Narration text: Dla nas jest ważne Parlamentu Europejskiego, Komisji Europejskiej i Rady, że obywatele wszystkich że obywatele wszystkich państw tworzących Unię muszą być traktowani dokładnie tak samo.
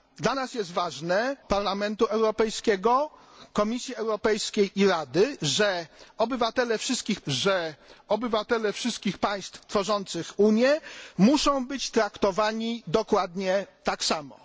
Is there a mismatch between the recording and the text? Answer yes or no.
no